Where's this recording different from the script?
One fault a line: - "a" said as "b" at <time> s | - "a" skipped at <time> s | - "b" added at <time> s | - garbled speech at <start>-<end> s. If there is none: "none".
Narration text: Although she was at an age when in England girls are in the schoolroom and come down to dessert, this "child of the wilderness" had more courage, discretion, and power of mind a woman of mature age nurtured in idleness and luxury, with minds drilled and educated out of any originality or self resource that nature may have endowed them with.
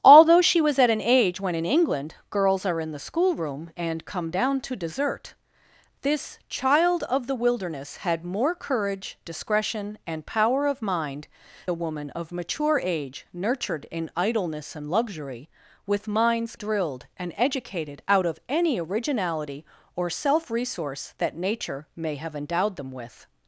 none